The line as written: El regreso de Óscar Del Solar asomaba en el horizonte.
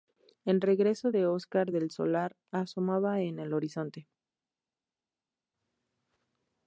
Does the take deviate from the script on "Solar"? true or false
false